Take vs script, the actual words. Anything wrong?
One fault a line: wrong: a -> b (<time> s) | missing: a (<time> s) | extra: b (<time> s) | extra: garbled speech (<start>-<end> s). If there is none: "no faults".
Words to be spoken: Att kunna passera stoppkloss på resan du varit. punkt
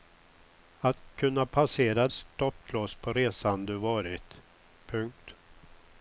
no faults